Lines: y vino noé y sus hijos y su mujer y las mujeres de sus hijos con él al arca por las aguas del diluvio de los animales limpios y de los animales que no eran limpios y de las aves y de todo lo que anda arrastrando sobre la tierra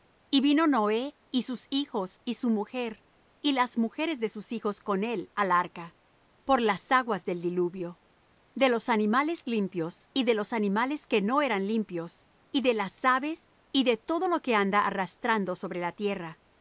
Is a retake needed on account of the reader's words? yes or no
no